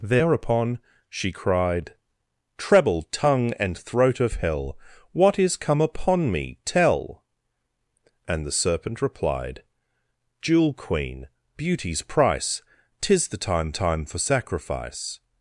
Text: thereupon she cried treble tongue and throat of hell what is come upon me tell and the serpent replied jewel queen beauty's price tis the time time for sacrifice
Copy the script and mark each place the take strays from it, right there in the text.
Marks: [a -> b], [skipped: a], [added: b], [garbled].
thereupon she cried treble tongue and throat of hell what is come upon me tell and the serpent replied jewel queen beauty's price tis the time time for sacrifice